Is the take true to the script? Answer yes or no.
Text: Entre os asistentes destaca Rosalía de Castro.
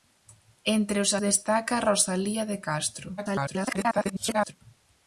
no